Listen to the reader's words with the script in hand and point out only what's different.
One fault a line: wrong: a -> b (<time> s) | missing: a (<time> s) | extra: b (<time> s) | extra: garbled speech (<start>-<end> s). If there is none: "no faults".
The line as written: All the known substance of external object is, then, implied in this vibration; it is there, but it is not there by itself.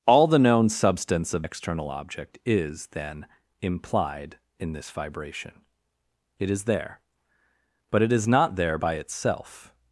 no faults